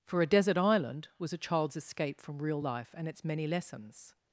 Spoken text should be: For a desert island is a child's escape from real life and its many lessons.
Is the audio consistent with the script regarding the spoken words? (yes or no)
no